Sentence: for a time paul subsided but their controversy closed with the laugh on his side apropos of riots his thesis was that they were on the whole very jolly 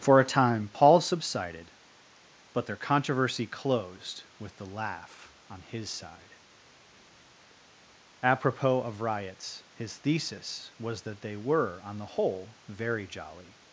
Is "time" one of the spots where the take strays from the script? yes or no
no